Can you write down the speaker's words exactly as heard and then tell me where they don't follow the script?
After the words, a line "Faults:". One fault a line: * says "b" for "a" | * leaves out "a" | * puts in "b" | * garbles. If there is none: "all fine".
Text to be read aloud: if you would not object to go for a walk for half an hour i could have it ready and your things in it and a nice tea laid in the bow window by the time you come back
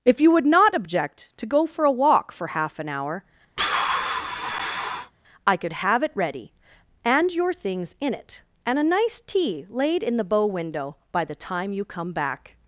if you would not object to go for a walk for half an hour i could have it ready and your things in it and a nice tea laid in the bow window by the time you come back
Faults:
all fine